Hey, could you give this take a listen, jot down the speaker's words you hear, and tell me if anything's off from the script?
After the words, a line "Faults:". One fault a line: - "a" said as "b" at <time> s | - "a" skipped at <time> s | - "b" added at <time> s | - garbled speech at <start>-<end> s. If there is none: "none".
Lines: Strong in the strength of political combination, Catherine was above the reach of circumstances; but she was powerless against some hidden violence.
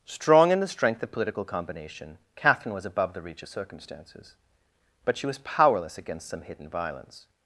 Strong in the strength of political combination, Catherine was above the reach of circumstances; but she was powerless against some hidden violence.
Faults:
none